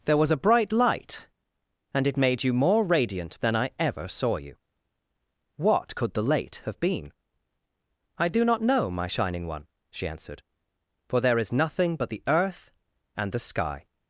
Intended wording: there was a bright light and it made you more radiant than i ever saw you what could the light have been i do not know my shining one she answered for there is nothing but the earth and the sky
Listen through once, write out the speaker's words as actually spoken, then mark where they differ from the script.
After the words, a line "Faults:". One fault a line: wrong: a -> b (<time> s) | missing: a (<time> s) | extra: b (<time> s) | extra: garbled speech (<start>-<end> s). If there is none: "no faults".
there was a bright light and it made you more radiant than i ever saw you what could the late have been i do not know my shining one she answered for there is nothing but the earth and the sky
Faults:
wrong: light -> late (6.2 s)